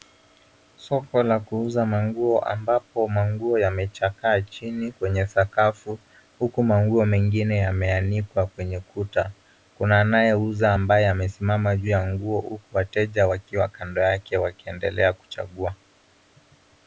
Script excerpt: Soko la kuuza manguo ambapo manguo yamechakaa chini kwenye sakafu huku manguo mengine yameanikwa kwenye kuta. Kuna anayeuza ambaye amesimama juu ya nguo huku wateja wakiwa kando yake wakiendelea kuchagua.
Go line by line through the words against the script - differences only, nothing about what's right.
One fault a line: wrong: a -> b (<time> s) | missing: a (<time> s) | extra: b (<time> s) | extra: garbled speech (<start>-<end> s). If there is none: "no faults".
no faults